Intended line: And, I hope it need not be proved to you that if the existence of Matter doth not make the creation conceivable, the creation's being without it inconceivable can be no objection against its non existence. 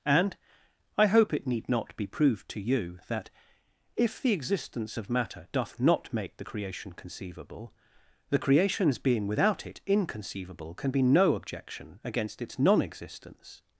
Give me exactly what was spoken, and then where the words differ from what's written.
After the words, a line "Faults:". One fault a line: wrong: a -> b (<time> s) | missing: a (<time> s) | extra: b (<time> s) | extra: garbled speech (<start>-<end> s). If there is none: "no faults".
And, I hope it need not be proved to you that if the existence of Matter doth not make the creation conceivable, the creation's being without it inconceivable can be no objection against its non existence.
Faults:
no faults